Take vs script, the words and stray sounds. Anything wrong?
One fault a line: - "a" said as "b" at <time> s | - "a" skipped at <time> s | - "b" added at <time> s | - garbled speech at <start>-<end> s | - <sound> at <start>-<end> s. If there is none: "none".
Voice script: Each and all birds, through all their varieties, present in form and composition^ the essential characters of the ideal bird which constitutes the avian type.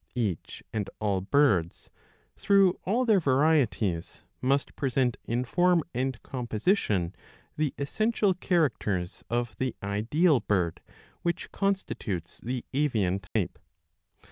- "must" added at 4.4 s
- dropout at 13.3-13.4 s